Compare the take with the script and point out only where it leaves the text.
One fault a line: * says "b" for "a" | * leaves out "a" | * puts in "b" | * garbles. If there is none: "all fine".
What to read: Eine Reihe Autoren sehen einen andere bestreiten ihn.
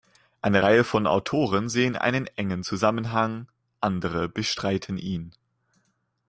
* puts in "von"
* puts in "engen Zusammenhang"